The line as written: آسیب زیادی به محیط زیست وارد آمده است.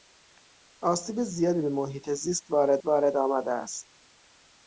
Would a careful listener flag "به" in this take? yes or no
no